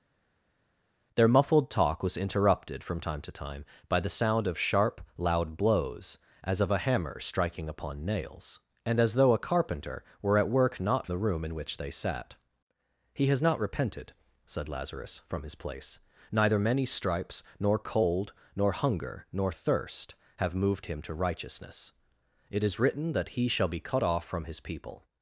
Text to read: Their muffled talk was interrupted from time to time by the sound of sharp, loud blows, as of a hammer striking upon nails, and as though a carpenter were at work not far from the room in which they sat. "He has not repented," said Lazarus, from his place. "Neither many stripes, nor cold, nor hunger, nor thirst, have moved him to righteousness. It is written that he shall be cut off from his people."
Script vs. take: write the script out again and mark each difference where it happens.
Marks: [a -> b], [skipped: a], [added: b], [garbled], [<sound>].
Their muffled talk was interrupted from time to time by the sound of sharp, loud blows, as of a hammer striking upon nails, and as though a carpenter were at work not [skipped: far from] the room in which they sat. "He has not repented," said Lazarus, from his place. "Neither many stripes, nor cold, nor hunger, nor thirst, have moved him to righteousness. It is written that he shall be cut off from his people."